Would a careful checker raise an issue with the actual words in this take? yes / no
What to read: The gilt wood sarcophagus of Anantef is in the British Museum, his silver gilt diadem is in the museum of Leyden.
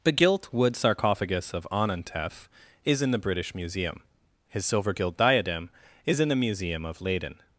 no